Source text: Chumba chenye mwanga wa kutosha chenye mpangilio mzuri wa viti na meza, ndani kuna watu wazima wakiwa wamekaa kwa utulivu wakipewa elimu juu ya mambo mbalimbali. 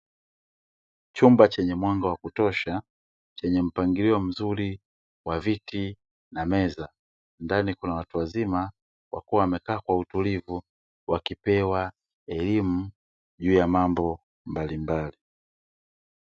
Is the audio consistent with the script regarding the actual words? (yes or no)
yes